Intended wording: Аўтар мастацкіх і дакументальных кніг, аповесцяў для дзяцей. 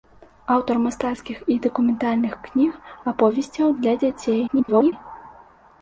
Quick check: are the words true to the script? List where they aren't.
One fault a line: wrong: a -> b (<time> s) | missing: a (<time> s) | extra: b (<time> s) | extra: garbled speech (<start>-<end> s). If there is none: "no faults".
extra: garbled speech (4.5-4.9 s)